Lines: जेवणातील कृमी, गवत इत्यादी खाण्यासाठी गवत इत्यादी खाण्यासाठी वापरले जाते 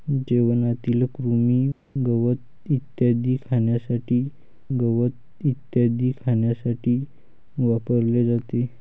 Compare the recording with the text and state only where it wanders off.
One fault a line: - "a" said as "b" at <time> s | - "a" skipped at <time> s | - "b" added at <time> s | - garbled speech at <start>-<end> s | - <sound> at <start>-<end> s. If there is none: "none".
none